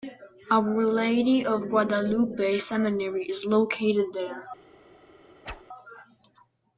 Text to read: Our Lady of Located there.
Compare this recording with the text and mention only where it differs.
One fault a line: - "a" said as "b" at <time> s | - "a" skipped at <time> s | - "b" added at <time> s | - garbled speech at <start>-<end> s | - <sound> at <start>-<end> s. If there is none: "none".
- "Guadalupe Seminary is" added at 1.7 s
- whoosh at 5.4-5.6 s